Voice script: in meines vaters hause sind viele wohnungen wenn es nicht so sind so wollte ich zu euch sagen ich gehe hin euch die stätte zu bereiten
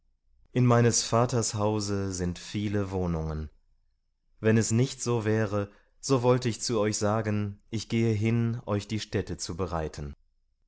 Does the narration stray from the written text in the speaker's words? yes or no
yes